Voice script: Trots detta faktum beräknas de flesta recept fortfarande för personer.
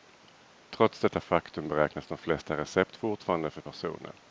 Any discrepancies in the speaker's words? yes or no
no